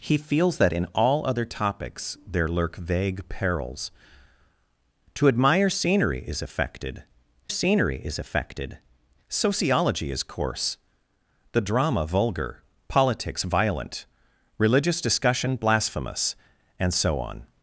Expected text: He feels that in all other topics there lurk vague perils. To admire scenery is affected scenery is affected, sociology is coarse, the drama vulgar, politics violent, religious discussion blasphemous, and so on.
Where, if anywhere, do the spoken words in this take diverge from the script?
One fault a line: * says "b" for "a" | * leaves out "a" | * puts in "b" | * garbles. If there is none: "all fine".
all fine